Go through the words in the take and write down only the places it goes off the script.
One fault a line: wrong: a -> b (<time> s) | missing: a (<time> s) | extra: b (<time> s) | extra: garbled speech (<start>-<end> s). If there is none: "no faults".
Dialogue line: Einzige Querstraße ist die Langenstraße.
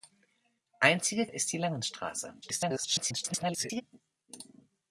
missing: Querstraße (1.3 s)
extra: garbled speech (2.4-3.8 s)